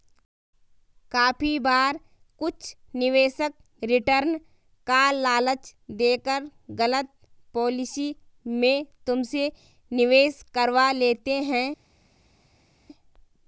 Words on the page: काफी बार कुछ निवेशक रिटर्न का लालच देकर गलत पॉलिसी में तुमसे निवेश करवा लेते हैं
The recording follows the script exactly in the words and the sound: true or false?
true